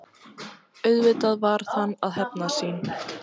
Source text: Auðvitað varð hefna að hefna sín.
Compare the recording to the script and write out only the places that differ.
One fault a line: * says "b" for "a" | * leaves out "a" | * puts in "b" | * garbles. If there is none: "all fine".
* says "hann" for "hefna"